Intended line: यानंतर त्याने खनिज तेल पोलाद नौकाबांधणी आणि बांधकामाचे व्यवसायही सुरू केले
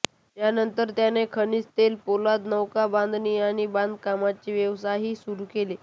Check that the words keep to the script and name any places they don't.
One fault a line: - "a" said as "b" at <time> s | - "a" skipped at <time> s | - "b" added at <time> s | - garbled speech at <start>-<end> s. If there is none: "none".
none